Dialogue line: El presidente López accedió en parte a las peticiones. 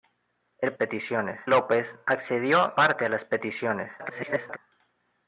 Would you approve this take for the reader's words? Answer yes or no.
no